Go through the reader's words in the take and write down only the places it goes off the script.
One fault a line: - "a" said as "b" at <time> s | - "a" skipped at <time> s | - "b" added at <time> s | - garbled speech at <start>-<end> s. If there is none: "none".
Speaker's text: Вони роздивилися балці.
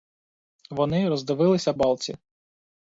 none